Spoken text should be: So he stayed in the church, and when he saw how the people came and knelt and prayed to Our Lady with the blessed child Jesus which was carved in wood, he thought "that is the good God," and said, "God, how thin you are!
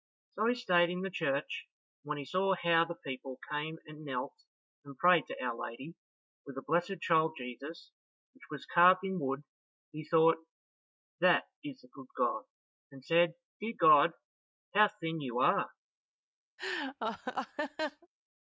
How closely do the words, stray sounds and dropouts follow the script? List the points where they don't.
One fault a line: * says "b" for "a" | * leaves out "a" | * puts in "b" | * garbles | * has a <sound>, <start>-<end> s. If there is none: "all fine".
* puts in "Dear"
* has a laugh, 16.6-18.1 s